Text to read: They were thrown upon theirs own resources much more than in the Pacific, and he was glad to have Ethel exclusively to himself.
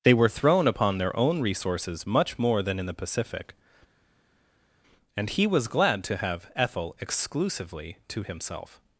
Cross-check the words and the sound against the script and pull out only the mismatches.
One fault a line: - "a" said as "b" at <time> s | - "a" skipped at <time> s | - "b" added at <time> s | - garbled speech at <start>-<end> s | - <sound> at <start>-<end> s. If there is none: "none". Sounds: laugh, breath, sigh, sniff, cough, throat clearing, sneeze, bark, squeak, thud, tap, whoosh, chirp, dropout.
- "theirs" said as "their" at 1.0 s